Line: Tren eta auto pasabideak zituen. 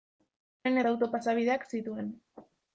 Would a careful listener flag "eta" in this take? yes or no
no